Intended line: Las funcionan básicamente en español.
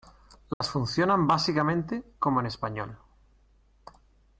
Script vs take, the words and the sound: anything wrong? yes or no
yes